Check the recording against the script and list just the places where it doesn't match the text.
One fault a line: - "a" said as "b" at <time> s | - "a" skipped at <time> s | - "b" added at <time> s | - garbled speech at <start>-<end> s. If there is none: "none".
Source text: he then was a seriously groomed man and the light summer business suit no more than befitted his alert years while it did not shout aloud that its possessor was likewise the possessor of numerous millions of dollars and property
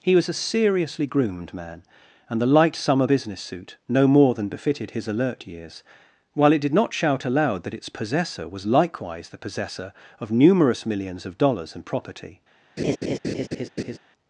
- "then" skipped at 0.1 s